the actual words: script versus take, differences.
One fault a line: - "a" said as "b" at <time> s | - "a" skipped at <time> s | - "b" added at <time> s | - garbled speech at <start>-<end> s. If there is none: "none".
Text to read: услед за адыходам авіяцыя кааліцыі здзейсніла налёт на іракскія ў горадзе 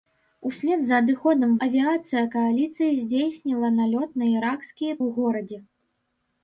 none